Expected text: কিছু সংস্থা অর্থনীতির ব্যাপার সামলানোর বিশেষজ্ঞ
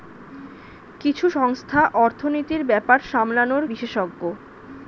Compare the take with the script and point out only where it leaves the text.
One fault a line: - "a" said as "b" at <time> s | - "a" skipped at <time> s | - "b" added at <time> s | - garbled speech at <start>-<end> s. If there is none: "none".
none